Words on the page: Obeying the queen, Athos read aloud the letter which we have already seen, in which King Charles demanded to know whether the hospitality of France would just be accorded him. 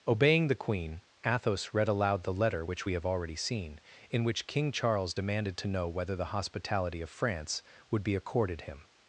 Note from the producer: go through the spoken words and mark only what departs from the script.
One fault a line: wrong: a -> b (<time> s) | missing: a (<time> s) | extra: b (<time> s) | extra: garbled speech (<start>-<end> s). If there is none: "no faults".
missing: just (8.0 s)